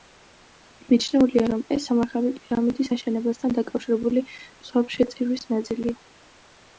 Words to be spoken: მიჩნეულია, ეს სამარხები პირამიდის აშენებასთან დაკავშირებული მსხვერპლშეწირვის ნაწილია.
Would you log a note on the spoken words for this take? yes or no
yes